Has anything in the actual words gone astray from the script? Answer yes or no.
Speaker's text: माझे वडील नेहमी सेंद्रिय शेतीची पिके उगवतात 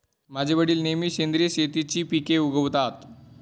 no